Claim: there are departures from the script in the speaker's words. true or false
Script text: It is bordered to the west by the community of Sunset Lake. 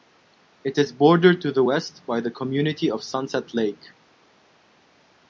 false